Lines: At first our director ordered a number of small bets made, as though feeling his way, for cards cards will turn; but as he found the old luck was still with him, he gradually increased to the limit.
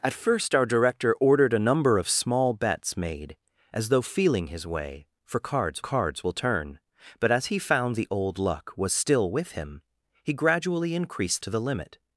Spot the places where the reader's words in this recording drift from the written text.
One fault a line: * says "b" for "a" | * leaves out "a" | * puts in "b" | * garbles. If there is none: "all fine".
all fine